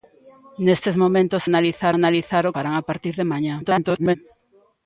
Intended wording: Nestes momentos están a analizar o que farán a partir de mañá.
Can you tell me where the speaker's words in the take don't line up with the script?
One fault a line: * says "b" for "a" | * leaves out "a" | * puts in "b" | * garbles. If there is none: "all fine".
* says "analizar" for "están"
* leaves out "que"
* garbles